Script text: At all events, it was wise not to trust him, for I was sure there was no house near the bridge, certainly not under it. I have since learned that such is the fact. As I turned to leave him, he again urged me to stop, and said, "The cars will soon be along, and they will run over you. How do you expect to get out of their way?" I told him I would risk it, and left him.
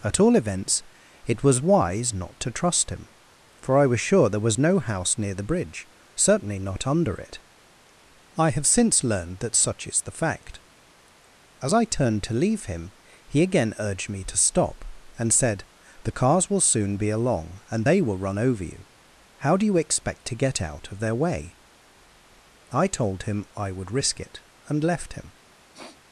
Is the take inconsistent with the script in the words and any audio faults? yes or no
yes